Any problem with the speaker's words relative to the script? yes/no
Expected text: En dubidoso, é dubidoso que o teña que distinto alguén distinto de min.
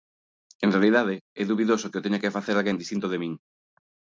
yes